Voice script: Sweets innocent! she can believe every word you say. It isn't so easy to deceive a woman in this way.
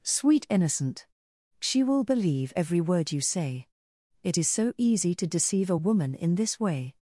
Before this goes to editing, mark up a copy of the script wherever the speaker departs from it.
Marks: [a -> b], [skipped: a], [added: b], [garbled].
[Sweets -> Sweet] innocent! she [can -> will] believe every word you say. It [isn't -> is] so easy to deceive a woman in this way.